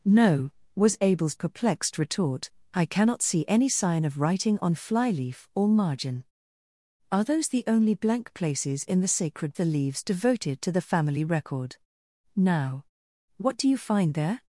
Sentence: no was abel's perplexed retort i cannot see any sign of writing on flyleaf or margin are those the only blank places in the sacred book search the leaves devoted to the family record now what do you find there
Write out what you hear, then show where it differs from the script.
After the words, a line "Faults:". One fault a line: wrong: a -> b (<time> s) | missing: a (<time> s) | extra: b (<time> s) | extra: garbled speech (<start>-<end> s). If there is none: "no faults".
no was abel's perplexed retort i cannot see any sign of writing on flyleaf or margin are those the only blank places in the sacred the leaves devoted to the family record now what do you find there
Faults:
missing: book search (9.6 s)